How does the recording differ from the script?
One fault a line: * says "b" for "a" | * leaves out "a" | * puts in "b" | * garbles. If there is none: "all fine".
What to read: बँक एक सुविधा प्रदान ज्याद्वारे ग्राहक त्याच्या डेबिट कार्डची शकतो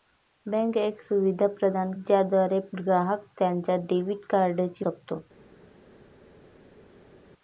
all fine